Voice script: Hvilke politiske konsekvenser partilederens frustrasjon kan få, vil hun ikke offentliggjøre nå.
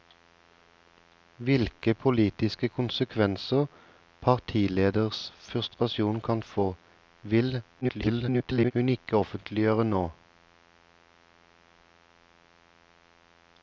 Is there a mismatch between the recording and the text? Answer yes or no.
yes